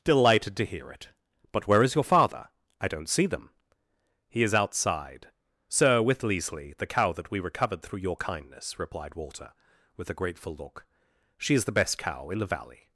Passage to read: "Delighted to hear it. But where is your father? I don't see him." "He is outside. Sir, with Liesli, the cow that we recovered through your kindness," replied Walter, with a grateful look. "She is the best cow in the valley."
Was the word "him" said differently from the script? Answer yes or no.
yes